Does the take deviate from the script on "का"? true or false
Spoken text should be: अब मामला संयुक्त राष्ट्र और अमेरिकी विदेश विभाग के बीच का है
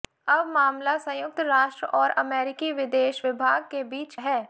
true